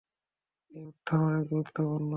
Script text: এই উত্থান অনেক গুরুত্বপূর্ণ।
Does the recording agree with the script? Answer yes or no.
yes